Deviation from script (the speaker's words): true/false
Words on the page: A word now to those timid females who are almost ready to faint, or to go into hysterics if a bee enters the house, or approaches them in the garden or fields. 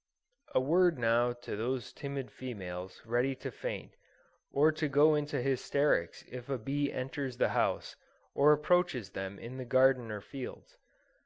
true